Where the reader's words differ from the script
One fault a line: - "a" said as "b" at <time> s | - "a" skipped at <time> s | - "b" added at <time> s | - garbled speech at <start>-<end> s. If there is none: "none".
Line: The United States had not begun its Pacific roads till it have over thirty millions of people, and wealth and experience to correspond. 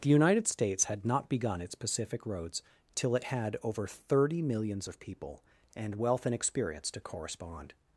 - "have" said as "had" at 3.2 s